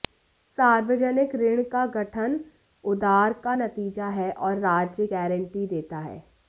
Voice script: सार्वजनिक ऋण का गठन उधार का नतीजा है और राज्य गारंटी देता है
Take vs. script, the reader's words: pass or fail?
pass